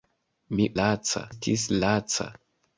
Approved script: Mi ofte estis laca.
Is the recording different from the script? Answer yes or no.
yes